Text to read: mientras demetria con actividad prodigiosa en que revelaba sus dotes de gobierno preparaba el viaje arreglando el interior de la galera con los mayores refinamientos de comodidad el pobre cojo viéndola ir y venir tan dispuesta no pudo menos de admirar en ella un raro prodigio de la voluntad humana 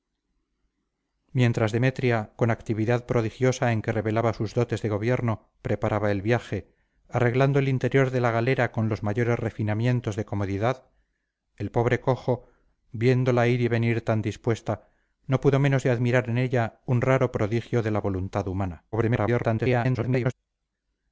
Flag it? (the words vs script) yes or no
yes